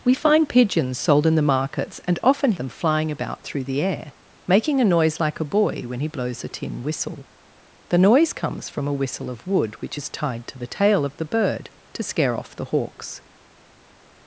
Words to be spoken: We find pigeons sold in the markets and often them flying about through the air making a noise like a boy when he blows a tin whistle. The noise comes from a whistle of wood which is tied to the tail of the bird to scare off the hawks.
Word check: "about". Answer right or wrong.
right